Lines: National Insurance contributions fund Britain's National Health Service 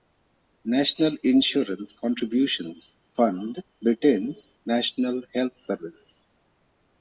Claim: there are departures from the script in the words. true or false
false